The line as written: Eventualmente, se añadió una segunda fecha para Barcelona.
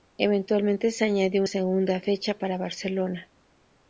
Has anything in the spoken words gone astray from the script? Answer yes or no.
yes